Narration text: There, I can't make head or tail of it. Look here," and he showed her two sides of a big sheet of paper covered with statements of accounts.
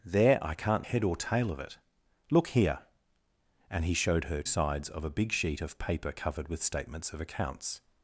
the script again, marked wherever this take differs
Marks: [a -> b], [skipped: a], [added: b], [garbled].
There, I can't [skipped: make] head or tail of it. Look here," and he showed her [skipped: two] sides of a big sheet of paper covered with statements of accounts.